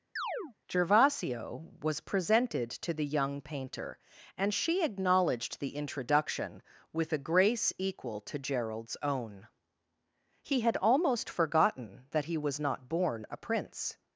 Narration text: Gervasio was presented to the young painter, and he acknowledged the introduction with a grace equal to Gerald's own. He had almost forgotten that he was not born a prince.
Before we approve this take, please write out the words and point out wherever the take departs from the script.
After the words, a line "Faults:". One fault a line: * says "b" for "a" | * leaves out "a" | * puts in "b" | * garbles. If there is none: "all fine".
Gervasio was presented to the young painter, and she acknowledged the introduction with a grace equal to Gerald's own. He had almost forgotten that he was not born a prince.
Faults:
* says "she" for "he"